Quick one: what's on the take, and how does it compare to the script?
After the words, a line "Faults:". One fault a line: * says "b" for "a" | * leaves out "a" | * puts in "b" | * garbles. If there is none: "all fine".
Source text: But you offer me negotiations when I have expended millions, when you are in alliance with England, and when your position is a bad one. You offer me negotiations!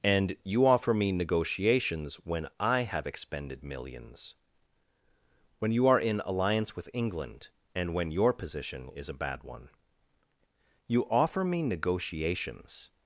And you offer me negotiations when I have expended millions, when you are in alliance with England, and when your position is a bad one. You offer me negotiations!
Faults:
* says "And" for "But"